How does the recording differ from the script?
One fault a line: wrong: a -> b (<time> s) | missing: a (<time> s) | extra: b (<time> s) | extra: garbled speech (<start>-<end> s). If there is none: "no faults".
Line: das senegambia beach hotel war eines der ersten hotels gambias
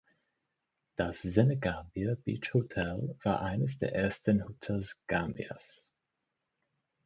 no faults